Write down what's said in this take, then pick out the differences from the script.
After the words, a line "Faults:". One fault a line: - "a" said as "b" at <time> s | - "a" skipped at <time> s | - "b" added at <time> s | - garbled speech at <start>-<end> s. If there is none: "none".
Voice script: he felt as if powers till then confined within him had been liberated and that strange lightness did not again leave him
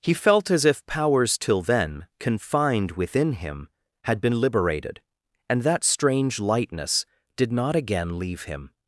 he felt as if powers till then confined within him had been liberated and that strange lightness did not again leave him
Faults:
none